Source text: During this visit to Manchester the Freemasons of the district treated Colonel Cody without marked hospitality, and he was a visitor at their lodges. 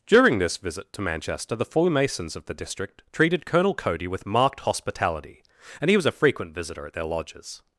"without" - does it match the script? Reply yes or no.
no